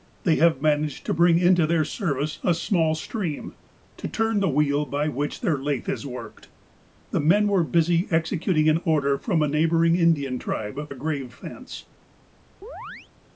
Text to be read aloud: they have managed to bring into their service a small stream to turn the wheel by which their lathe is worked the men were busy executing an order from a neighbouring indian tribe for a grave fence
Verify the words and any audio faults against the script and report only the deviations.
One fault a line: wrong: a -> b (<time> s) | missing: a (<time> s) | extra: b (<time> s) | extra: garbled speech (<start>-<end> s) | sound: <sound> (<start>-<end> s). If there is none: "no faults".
missing: for (10.9 s)
sound: chirp (12.6-13.1 s)